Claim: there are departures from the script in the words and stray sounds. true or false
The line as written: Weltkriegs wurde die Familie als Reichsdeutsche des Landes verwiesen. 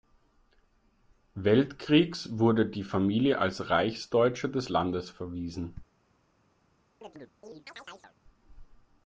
true